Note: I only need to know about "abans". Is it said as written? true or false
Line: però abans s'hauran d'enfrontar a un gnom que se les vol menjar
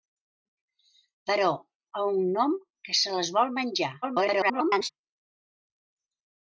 false